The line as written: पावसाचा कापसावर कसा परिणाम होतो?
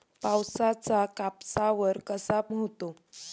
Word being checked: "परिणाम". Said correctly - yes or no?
no